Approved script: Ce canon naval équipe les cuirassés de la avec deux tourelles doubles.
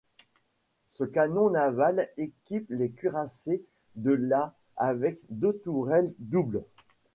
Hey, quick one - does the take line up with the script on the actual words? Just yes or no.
yes